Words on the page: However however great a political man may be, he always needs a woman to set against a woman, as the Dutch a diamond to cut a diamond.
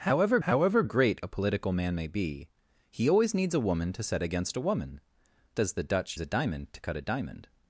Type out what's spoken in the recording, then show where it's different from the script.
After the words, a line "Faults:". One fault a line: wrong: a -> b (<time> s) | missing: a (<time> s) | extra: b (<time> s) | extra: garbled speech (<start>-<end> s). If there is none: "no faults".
However however great a political man may be, he always needs a woman to set against a woman, as the Dutch a diamond to cut a diamond.
Faults:
no faults